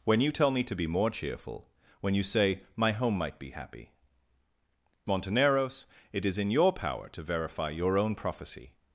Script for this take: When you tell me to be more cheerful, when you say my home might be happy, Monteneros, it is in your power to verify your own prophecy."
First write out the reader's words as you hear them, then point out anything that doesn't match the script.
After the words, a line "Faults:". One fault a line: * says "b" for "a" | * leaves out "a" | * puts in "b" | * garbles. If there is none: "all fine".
When you tell me to be more cheerful, when you say my home might be happy, Monteneros, it is in your power to verify your own prophecy."
Faults:
all fine